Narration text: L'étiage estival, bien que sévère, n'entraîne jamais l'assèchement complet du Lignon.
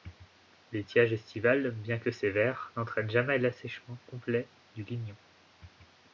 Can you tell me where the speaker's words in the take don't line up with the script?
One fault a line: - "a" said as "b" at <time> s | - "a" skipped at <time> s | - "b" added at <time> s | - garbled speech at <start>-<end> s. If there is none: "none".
none